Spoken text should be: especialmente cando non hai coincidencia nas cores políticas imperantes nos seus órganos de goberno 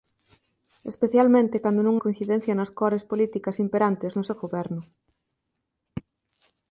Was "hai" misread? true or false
true